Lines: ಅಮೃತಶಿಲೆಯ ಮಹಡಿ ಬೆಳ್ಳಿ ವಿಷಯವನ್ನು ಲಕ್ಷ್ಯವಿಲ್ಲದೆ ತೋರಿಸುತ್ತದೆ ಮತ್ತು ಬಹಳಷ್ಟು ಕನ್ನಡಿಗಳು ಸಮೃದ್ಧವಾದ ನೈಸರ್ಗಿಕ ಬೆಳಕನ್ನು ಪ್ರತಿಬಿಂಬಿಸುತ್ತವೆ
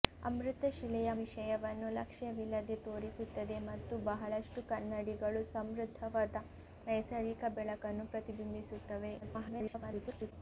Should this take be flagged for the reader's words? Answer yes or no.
yes